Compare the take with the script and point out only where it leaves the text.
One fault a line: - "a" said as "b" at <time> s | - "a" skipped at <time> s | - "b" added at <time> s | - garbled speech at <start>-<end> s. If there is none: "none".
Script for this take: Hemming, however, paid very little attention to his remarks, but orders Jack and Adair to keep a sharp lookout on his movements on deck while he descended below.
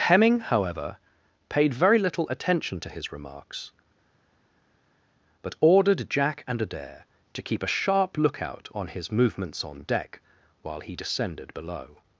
- "orders" said as "ordered" at 5.6 s